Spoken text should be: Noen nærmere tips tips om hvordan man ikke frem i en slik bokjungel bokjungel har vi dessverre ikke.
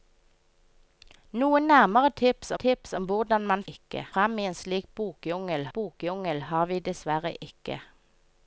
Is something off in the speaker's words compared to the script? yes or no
no